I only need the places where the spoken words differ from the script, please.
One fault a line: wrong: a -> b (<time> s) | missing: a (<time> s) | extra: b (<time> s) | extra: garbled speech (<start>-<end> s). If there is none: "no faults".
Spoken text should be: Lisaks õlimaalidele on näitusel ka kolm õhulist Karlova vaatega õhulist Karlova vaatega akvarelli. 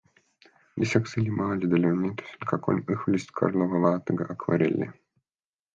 missing: õhulist Karlova vaatega (4.3 s)